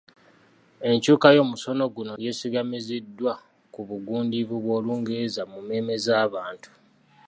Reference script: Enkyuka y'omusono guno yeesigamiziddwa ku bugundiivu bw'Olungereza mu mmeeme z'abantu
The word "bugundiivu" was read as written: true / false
true